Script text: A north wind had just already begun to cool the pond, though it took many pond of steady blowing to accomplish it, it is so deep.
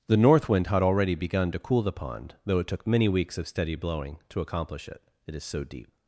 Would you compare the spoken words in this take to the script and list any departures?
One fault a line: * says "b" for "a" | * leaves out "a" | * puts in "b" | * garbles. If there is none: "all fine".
* says "The" for "A"
* leaves out "just"
* says "weeks" for "pond"